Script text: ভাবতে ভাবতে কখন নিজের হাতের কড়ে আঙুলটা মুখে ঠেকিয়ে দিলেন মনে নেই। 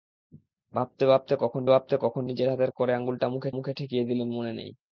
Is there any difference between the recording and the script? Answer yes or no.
yes